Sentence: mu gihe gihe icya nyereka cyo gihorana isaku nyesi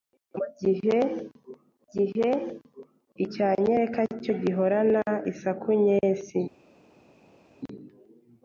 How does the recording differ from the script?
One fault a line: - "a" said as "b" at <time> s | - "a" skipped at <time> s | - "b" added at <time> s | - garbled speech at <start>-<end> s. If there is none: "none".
none